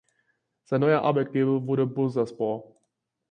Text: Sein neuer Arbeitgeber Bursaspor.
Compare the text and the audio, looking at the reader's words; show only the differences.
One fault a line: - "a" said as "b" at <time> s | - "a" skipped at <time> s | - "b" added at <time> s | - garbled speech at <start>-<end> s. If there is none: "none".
- "wurde" added at 1.6 s